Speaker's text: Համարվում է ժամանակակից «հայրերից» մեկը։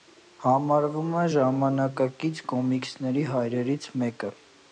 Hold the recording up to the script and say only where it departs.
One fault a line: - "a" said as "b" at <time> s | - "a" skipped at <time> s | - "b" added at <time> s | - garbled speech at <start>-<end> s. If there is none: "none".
- "կոմիքսների" added at 2.5 s